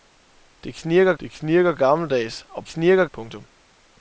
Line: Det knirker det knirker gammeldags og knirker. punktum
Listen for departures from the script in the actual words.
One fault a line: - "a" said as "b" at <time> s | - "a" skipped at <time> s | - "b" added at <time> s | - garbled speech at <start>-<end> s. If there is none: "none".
none